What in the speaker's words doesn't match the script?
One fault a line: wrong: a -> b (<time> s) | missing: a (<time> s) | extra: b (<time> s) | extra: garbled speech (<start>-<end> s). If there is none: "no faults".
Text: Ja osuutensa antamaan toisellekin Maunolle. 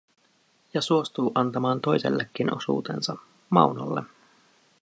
wrong: osuutensa -> suostuu (0.8 s)
extra: osuutensa (2.5 s)